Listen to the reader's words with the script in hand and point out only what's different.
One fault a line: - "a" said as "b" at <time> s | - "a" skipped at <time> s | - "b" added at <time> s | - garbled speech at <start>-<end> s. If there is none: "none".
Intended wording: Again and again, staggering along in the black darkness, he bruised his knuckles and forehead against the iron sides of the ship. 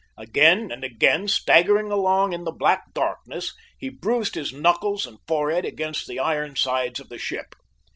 none